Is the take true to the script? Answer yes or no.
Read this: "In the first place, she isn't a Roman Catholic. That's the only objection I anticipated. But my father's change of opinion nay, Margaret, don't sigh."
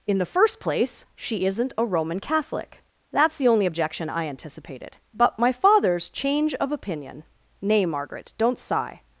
yes